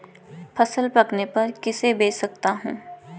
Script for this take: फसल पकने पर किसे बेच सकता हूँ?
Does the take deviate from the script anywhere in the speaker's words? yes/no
no